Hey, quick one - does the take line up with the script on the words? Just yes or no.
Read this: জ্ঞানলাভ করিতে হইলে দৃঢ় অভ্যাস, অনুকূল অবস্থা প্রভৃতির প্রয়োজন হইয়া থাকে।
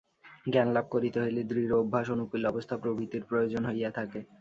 yes